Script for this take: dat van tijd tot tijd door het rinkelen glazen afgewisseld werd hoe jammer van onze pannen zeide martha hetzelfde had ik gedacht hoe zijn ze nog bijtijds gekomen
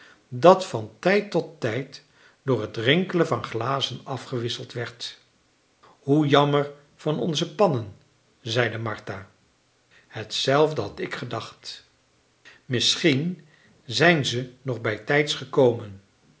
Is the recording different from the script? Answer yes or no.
yes